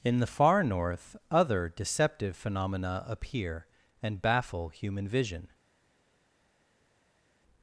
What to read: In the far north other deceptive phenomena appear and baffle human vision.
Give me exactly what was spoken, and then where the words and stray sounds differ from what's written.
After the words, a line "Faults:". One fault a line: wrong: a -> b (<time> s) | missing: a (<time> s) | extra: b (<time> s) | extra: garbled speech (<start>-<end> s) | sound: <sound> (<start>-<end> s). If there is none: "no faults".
In the far north other deceptive phenomena appear and baffle human vision.
Faults:
no faults